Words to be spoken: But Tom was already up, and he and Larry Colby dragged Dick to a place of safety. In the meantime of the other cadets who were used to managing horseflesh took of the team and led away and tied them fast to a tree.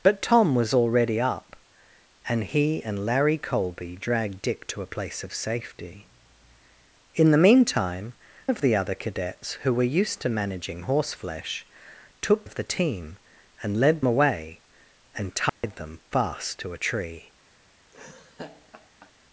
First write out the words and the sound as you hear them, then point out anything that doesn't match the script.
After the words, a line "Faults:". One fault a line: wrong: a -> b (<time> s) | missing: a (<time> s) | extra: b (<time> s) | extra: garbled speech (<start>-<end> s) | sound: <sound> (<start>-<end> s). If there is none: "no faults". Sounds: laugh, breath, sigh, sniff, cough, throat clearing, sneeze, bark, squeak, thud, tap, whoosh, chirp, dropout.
But Tom was already up, and he and Larry Colby dragged Dick to a place of safety. In the meantime of the other cadets who were used to managing horseflesh took of the team and led away and tied them fast to a tree.
Faults:
sound: dropout (15.5-15.6 s)
sound: laugh (17.9-19.1 s)